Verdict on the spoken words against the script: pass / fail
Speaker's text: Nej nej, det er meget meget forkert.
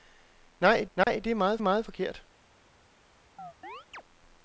pass